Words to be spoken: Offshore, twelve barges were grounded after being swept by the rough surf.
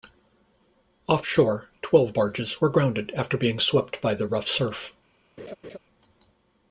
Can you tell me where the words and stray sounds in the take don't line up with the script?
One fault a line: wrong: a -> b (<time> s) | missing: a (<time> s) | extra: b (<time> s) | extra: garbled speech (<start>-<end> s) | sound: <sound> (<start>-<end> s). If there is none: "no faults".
sound: laugh (5.4-5.8 s)